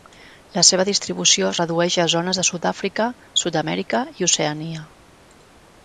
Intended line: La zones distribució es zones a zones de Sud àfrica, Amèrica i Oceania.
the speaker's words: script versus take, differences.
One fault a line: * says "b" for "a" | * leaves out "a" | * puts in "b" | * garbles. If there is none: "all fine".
* says "seva" for "zones"
* says "redueix" for "zones"
* puts in "Sud"